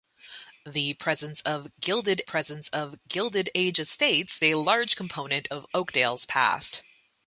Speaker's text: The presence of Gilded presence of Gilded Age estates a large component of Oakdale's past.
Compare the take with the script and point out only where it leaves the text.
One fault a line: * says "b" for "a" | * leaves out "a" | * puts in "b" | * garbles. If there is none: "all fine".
all fine